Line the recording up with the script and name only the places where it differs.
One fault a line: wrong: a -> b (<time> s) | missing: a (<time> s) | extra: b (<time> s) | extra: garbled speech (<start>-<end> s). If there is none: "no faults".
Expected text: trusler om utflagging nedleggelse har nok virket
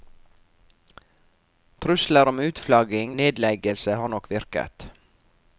no faults